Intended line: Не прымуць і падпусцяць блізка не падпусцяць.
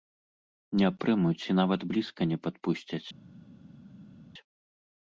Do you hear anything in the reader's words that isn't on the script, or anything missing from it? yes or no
yes